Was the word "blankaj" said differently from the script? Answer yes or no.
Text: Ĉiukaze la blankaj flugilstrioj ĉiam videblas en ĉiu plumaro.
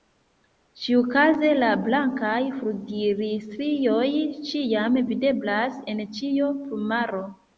no